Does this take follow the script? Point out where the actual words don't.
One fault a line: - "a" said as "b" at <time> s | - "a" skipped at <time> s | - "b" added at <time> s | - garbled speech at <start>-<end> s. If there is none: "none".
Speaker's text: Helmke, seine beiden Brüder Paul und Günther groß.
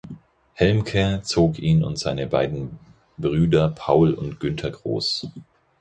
- "zog ihn und" added at 1.2 s